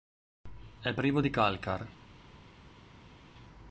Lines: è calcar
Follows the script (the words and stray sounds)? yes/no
no